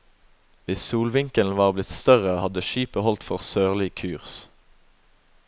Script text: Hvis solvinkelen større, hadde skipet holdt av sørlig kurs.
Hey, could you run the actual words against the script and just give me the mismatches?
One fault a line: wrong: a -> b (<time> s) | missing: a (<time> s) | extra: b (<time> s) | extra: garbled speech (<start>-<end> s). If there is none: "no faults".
extra: var blitt (1.6 s)
wrong: av -> for (3.3 s)